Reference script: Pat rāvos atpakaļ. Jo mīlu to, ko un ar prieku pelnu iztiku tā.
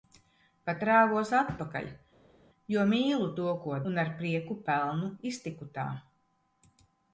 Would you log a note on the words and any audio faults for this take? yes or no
no